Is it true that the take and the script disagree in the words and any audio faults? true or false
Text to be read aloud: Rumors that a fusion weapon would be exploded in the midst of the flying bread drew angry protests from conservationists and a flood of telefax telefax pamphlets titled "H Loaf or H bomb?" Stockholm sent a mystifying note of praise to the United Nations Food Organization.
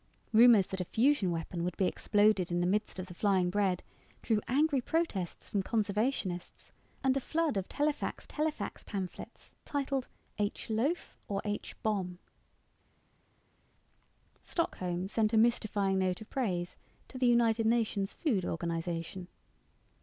false